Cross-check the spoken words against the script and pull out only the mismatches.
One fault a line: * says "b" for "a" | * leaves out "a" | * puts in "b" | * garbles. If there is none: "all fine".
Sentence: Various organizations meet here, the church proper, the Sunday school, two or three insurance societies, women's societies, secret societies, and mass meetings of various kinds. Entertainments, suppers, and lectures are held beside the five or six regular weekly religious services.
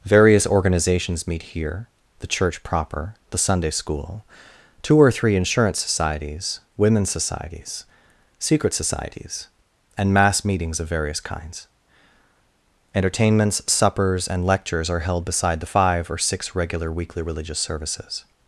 all fine